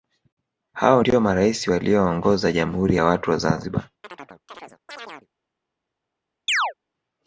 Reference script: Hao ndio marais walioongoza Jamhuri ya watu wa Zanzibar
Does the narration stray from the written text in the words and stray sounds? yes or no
yes